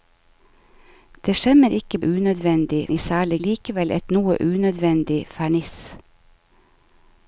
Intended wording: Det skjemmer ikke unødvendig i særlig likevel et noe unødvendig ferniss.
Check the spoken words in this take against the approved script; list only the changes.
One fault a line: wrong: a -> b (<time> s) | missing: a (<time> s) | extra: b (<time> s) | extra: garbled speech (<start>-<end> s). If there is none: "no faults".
no faults